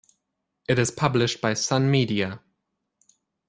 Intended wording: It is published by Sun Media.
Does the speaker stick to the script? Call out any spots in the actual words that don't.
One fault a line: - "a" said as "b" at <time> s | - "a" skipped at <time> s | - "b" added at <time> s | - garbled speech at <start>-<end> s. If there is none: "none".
none